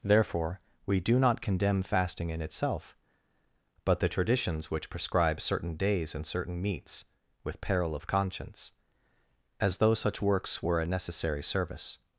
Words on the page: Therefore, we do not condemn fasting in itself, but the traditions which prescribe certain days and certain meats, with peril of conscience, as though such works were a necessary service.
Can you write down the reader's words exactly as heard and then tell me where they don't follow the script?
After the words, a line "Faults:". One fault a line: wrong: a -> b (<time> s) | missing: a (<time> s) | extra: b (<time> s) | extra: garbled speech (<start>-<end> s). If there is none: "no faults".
Therefore, we do not condemn fasting in itself, but the traditions which prescribe certain days and certain meats, with peril of conscience, as though such works were a necessary service.
Faults:
no faults